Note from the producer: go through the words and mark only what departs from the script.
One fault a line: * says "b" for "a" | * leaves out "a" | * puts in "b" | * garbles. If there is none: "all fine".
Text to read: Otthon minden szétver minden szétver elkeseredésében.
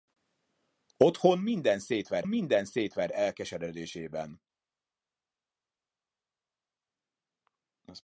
all fine